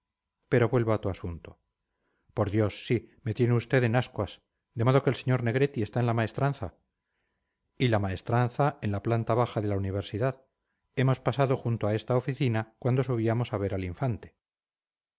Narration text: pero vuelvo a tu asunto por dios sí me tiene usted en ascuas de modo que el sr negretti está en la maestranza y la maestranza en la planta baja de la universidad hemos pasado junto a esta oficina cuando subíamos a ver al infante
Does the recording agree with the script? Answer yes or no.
yes